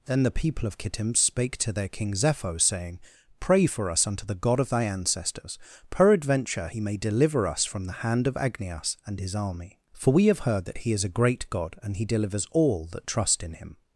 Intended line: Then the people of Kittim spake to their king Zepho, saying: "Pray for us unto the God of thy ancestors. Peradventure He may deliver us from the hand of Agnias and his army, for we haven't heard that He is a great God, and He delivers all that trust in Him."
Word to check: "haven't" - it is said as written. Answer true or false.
false